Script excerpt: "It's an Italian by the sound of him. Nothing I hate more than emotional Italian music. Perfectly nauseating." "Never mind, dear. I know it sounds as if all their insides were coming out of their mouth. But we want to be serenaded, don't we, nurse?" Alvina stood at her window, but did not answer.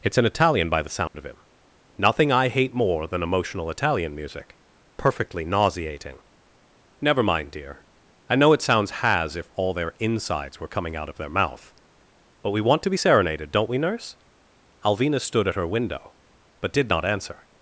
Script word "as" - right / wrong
wrong